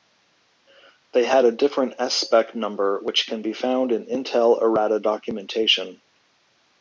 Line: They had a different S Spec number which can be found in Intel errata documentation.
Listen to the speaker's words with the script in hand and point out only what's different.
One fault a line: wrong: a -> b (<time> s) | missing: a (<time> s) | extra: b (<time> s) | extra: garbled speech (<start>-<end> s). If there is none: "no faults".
no faults